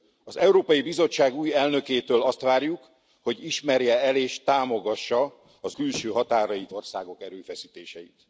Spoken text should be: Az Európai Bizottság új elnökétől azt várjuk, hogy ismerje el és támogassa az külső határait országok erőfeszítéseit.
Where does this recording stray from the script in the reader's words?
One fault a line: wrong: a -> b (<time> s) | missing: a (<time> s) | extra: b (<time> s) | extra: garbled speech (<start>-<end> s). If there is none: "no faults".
no faults